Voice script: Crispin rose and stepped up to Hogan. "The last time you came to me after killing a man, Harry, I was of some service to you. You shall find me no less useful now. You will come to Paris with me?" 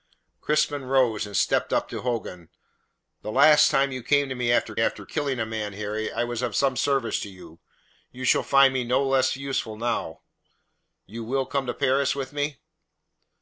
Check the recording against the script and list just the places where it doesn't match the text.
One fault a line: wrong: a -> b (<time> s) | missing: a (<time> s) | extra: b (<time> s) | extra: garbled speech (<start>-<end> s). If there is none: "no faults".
extra: after (4.8 s)